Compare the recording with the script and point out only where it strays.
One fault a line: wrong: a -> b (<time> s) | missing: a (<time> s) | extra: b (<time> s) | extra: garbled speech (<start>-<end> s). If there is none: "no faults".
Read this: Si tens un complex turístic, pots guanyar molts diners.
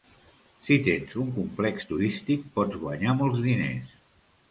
no faults